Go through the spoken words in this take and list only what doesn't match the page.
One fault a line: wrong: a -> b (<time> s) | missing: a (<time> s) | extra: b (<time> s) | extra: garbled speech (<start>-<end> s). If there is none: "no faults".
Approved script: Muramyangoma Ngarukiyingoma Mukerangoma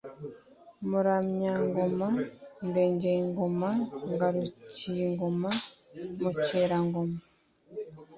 extra: Ndengeyingoma (2.7 s)